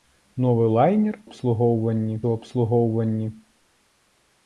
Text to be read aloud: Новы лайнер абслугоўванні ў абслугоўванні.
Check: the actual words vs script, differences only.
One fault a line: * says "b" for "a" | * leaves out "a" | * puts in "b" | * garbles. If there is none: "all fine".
all fine